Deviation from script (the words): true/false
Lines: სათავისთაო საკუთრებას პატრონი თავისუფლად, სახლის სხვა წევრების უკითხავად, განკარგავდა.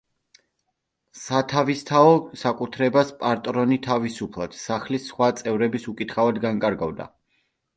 false